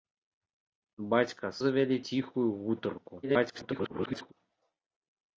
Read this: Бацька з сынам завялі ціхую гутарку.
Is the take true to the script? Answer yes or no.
no